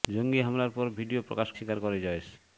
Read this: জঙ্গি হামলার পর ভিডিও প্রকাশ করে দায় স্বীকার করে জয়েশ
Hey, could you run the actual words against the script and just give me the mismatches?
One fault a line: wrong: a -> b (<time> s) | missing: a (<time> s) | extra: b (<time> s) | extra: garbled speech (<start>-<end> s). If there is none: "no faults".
missing: করে দায় (1.5 s)